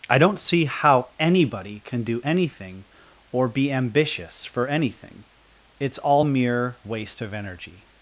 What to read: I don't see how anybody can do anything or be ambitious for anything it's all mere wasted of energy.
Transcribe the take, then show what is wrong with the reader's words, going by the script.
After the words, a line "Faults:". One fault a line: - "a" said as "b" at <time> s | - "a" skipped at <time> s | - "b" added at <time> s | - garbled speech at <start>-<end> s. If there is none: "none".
I don't see how anybody can do anything or be ambitious for anything it's all mere waste of energy.
Faults:
- "wasted" said as "waste" at 6.8 s